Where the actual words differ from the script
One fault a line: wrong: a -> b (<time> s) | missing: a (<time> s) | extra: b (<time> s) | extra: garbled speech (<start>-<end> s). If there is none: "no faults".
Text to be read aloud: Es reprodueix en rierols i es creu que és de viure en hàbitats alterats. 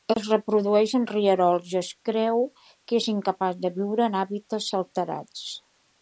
extra: incapaç (3.1 s)